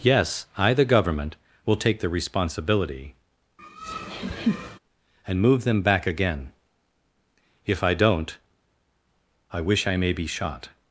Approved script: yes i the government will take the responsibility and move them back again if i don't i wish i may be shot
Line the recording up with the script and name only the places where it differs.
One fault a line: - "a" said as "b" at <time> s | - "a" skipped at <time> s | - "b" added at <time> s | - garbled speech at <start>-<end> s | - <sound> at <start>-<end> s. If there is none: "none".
- laugh at 3.6-4.8 s